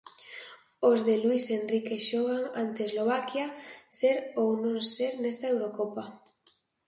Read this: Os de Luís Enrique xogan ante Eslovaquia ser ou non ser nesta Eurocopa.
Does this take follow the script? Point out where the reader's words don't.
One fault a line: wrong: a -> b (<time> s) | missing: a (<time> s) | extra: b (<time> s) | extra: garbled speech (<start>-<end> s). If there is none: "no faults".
no faults